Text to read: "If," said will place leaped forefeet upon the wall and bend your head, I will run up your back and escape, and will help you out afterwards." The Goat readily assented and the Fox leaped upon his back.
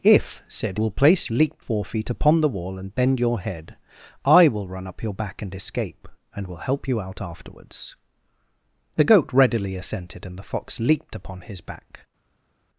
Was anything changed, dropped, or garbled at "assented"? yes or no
no